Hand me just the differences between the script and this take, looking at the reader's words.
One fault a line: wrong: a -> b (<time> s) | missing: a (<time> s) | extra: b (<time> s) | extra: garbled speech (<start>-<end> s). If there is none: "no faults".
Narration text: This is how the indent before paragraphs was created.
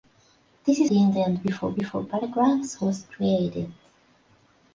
missing: how (0.9 s)
extra: before (1.8 s)